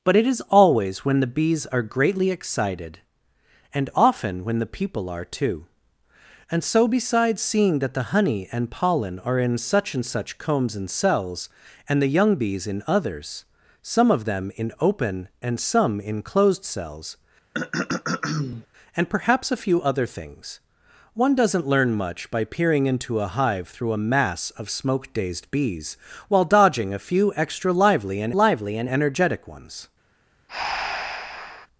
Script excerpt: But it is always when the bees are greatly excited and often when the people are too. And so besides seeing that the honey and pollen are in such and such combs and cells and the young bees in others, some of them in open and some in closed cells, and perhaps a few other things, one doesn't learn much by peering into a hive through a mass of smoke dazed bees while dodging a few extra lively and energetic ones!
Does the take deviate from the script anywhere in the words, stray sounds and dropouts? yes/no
yes